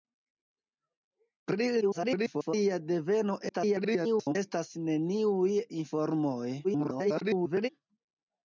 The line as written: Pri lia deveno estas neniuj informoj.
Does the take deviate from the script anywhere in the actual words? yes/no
yes